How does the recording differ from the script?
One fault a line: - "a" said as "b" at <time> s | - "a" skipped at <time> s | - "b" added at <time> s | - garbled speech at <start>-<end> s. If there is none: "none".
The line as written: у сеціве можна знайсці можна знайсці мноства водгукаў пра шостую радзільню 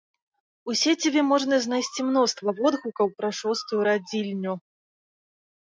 - "можна знайсці" skipped at 2.1 s